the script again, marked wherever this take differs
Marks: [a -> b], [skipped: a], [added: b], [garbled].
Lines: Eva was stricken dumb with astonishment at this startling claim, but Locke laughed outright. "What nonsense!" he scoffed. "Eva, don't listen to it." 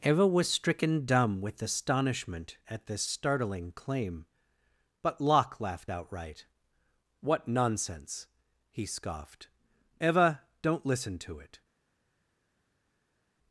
Eva was stricken dumb with astonishment at this startling claim, but Locke laughed outright. "What nonsense!" he scoffed. "Eva, don't listen to it."